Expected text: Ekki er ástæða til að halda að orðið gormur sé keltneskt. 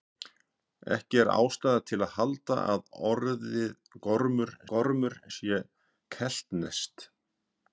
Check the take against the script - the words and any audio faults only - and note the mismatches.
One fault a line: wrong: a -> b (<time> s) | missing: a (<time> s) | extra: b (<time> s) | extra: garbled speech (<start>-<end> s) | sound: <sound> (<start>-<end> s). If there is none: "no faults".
extra: gormur (4.7 s)